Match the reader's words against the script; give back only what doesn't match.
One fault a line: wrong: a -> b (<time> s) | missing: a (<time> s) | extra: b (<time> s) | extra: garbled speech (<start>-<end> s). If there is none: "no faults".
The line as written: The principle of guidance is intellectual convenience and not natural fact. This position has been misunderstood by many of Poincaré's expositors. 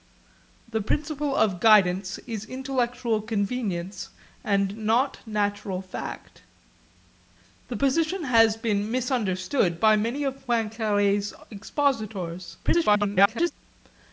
extra: garbled speech (12.6-13.5 s)